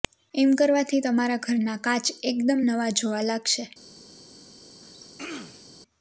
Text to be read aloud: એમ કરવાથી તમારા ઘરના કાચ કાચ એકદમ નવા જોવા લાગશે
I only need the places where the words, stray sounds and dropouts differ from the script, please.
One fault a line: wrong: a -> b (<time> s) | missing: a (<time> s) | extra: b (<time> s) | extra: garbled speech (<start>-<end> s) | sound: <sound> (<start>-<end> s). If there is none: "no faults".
missing: કાચ (2.1 s)
sound: throat clearing (4.8-5.7 s)